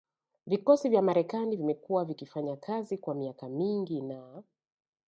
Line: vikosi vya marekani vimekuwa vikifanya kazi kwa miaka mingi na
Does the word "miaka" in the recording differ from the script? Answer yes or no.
no